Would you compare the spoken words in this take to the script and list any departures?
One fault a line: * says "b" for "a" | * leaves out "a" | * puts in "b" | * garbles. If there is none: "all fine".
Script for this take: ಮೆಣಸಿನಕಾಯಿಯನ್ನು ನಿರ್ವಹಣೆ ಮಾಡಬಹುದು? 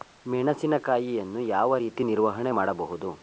* puts in "ಯಾವ ರೀತಿ"